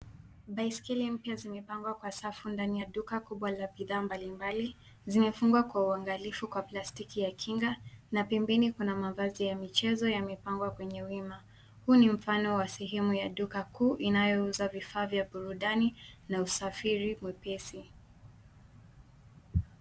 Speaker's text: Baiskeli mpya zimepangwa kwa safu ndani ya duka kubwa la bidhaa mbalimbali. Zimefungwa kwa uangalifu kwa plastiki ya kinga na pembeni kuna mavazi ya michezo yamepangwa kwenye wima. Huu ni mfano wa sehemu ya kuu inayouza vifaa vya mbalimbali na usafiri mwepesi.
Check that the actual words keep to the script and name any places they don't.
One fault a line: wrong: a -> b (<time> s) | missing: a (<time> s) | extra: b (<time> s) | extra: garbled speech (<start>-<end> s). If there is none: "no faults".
extra: duka (13.3 s)
wrong: mbalimbali -> burudani (15.2 s)